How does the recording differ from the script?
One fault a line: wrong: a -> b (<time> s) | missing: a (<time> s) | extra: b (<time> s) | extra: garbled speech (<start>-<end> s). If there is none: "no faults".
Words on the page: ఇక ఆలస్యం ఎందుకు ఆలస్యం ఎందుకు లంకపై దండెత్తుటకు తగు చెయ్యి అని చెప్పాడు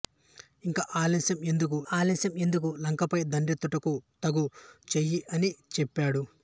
no faults